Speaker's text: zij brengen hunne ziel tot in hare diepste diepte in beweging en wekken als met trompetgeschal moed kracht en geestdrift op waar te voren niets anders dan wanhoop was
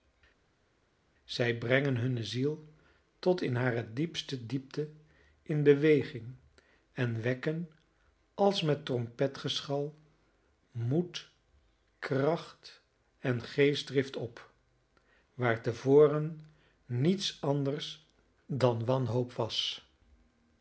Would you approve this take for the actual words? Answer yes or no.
yes